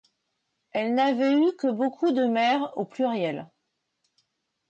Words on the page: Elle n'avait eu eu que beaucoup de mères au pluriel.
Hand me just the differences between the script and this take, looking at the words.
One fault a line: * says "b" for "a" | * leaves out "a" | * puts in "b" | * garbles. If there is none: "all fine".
* leaves out "eu"